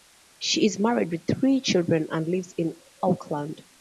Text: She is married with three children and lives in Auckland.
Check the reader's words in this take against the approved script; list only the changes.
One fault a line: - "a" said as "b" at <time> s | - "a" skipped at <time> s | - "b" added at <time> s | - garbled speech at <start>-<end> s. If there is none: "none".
none